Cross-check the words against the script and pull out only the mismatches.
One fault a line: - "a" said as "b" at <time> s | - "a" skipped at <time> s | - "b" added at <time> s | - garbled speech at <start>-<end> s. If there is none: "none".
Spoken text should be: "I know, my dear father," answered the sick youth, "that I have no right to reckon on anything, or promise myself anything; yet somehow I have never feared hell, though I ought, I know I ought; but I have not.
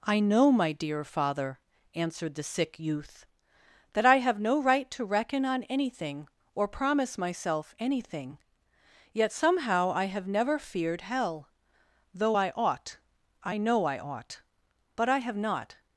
none